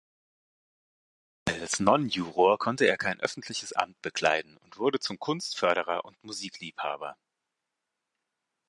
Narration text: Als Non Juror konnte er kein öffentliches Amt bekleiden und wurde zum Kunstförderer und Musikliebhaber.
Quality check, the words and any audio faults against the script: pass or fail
pass